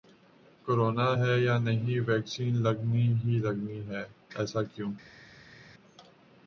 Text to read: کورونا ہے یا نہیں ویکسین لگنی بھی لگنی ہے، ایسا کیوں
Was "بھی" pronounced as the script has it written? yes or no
no